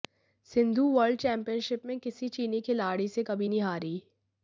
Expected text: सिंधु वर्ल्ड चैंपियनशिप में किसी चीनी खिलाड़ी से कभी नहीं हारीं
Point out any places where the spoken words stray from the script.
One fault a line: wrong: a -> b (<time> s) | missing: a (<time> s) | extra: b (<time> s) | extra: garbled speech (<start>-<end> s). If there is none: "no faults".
no faults